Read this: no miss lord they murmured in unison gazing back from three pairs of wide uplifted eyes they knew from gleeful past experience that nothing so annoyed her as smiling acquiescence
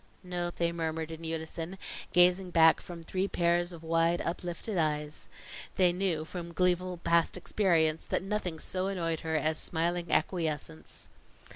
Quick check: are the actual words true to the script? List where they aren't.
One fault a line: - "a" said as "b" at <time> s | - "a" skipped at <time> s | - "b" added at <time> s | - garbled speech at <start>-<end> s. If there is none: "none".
- "miss lord" skipped at 0.5 s